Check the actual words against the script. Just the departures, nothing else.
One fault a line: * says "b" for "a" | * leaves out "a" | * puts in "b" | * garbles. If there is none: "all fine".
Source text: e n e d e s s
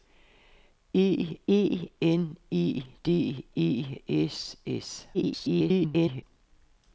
* puts in "e"
* garbles